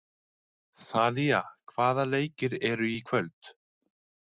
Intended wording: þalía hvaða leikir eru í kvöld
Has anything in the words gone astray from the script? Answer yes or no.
no